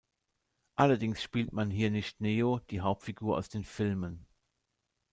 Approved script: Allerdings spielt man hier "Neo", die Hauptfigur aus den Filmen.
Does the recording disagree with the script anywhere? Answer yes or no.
yes